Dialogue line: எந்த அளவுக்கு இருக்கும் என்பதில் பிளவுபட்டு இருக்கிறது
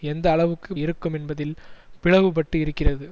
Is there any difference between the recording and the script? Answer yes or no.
no